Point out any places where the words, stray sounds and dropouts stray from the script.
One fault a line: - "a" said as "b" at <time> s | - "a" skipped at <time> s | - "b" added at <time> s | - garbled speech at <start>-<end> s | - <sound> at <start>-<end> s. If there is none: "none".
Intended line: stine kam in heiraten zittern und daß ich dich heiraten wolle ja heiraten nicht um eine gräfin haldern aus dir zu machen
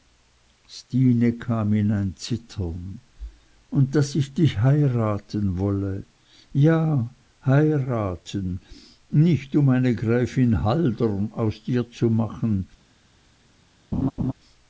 - "heiraten" said as "ein" at 1.9 s
- laugh at 13.9-14.3 s